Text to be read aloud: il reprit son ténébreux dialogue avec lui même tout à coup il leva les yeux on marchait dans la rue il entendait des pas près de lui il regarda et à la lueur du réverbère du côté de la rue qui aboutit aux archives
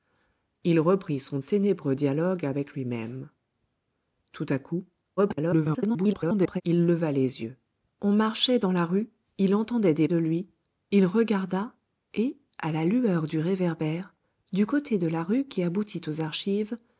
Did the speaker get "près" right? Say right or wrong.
wrong